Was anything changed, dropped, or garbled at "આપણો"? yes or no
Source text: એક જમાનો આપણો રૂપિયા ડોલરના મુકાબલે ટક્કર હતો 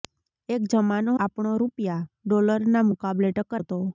no